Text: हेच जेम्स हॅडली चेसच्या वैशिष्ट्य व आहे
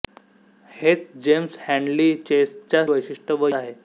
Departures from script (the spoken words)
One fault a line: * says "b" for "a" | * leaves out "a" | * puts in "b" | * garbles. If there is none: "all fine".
all fine